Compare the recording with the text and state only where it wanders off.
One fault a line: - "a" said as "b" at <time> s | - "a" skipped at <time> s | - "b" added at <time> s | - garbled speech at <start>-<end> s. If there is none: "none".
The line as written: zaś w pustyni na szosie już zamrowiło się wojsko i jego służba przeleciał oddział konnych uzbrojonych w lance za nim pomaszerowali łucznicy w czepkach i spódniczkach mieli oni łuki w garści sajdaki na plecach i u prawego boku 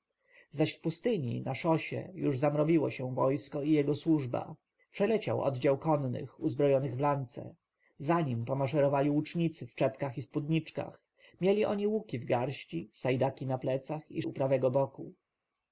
none